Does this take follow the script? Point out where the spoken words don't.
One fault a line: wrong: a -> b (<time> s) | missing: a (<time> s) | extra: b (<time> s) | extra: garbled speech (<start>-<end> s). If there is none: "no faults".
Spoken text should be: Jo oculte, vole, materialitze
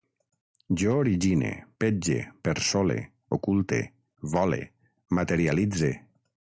extra: origine petge persole (1.0 s)